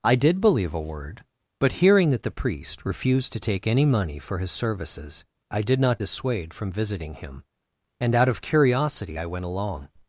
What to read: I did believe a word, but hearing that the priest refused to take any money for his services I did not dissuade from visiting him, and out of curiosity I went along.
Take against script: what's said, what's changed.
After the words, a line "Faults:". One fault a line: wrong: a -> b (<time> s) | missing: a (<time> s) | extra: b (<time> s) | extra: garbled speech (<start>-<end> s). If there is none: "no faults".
I did believe a word, but hearing that the priest refused to take any money for his services I did not dissuade from visiting him, and out of curiosity I went along.
Faults:
no faults